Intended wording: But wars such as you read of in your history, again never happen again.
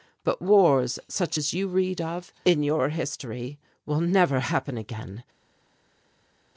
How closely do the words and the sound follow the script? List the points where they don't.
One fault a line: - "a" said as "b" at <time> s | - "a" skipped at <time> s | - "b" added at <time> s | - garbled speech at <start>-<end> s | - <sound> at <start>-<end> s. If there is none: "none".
- "again" said as "will" at 3.8 s